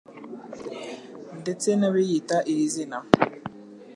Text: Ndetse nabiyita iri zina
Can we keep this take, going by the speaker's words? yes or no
yes